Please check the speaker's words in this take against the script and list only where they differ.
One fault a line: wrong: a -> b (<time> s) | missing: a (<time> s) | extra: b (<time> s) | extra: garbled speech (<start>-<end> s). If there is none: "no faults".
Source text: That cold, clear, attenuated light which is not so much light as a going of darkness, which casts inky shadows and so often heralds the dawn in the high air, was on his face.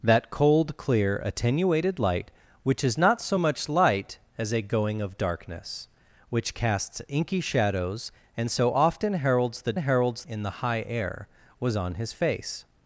wrong: dawn -> heralds (9.8 s)